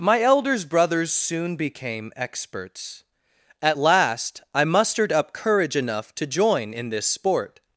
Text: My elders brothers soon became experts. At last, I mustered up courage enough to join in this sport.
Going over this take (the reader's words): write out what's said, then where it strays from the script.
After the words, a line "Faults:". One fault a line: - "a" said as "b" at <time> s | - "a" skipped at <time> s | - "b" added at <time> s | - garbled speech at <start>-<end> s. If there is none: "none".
My elders brothers soon became experts. At last, I mustered up courage enough to join in this sport.
Faults:
none